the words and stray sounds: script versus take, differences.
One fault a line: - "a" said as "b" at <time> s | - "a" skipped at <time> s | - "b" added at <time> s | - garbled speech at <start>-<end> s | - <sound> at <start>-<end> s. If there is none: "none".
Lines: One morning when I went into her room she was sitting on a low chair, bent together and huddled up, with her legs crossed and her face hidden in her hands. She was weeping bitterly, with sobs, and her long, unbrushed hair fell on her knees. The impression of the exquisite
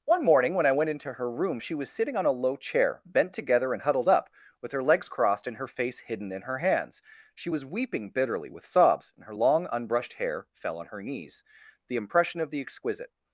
none